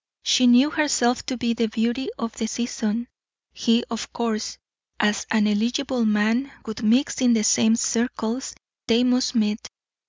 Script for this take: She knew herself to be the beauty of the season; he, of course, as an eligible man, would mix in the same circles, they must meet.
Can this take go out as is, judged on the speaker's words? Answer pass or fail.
pass